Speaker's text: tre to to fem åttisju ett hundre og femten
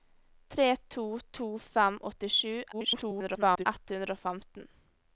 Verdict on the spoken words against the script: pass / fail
fail